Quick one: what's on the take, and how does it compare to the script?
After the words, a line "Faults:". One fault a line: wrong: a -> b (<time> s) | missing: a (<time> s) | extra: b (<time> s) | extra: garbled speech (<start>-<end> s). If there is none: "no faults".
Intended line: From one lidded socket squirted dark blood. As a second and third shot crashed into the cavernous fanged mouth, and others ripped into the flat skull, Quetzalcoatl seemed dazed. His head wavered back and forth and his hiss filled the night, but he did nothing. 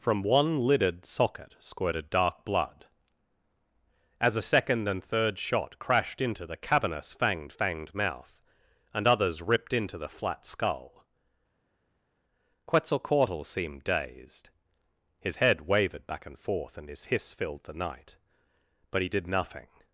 From one lidded socket squirted dark blood. As a second and third shot crashed into the cavernous fanged fanged mouth, and others ripped into the flat skull, Quetzalcoatl seemed dazed. His head wavered back and forth and his hiss filled the night, but he did nothing.
Faults:
extra: fanged (7.5 s)